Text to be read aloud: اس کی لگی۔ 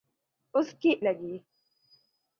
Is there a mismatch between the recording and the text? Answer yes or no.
no